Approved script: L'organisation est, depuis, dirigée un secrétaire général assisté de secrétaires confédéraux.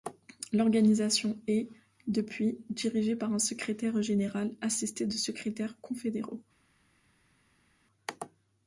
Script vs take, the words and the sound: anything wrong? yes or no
yes